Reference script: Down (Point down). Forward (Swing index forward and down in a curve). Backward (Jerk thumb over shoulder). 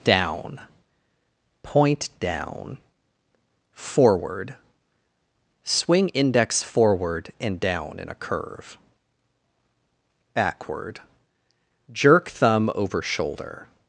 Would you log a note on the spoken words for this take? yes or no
no